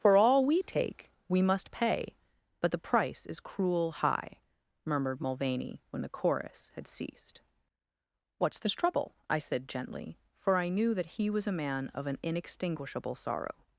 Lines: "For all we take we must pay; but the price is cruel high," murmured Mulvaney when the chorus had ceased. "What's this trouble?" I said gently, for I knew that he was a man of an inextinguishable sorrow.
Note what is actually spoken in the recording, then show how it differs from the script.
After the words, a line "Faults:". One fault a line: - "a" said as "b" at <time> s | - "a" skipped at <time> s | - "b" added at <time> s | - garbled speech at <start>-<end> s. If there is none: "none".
"For all we take we must pay; but the price is cruel high," murmured Mulvaney when the chorus had ceased. "What's this trouble?" I said gently, for I knew that he was a man of an inextinguishable sorrow.
Faults:
none